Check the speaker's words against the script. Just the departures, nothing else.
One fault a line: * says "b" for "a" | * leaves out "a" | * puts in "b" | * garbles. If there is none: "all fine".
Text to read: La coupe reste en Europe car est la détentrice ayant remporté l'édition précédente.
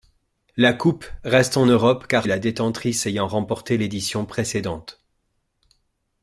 all fine